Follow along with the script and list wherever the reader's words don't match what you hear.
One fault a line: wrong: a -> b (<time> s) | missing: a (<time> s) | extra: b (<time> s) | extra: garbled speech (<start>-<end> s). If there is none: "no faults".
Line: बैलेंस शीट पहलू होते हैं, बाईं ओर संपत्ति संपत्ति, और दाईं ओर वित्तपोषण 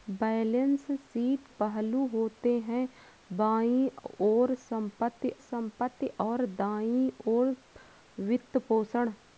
no faults